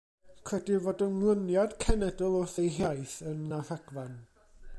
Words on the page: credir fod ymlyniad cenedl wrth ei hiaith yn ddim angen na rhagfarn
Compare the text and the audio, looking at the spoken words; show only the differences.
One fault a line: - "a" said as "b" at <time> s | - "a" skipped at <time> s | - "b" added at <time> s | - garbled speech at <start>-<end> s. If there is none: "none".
- "ddim angen" skipped at 3.4 s